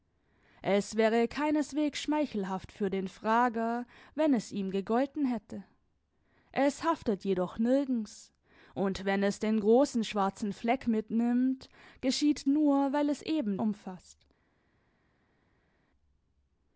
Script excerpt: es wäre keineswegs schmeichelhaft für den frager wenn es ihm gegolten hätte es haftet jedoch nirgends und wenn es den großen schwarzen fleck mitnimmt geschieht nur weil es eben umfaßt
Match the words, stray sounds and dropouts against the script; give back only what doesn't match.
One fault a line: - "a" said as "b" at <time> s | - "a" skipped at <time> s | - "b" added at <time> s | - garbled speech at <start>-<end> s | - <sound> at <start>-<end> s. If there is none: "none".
none